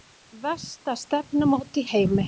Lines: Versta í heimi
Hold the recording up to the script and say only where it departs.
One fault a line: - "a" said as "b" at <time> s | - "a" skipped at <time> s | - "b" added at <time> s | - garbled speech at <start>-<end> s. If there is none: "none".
- "stefnumót" added at 1.0 s